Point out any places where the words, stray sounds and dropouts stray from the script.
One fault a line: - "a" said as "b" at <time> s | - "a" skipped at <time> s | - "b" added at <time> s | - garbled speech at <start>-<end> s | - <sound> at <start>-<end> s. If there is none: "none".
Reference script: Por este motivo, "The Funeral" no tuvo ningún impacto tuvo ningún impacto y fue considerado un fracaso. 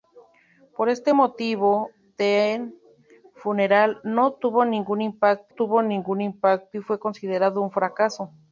none